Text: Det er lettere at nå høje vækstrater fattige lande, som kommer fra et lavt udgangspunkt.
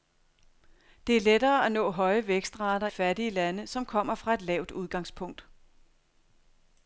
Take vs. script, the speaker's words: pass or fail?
pass